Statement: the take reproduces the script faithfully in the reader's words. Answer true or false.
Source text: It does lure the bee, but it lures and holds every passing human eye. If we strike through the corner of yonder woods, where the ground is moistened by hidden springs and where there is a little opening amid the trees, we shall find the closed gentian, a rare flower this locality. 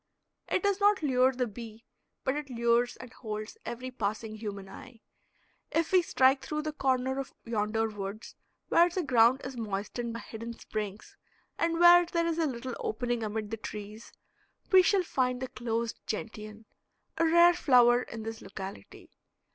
false